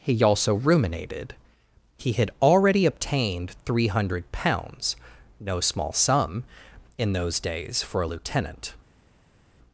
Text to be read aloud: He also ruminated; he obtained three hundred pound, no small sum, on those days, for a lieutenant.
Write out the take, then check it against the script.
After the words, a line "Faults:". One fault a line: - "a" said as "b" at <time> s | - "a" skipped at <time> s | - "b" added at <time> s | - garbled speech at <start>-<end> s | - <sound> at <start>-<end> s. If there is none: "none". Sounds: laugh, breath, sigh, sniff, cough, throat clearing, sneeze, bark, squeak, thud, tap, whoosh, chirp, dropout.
He also ruminated; he had already obtained three hundred pounds, no small sum, in those days, for a lieutenant.
Faults:
- "had already" added at 2.1 s
- "pound" said as "pounds" at 4.3 s
- "on" said as "in" at 7.0 s